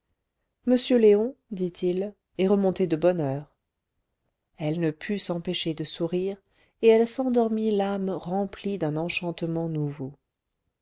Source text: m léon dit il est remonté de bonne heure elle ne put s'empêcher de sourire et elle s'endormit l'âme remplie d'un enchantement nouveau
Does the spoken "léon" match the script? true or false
true